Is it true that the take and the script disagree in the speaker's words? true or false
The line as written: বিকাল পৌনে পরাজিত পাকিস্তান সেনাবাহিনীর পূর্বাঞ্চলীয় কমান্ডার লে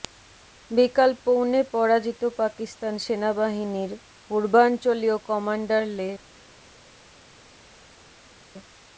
false